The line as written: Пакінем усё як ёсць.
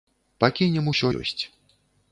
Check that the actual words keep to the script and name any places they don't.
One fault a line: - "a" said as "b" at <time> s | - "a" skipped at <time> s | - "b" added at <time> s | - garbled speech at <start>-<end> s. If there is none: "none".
- "як" skipped at 1.1 s